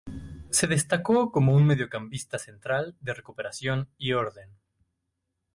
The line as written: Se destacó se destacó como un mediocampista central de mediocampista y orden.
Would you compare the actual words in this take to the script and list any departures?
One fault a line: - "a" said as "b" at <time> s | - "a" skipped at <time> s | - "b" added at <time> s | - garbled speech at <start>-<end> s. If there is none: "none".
- "se destacó" skipped at 1.3 s
- "mediocampista" said as "recuperación" at 3.1 s